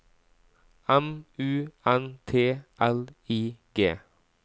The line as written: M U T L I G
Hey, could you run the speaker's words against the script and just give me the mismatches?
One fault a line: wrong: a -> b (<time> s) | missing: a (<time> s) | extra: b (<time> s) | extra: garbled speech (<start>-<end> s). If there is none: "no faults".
extra: N (1.8 s)